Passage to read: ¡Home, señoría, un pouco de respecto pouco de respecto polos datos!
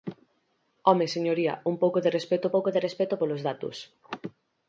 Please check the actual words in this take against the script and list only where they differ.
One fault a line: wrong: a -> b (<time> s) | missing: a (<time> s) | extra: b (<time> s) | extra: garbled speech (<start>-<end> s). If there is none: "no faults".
no faults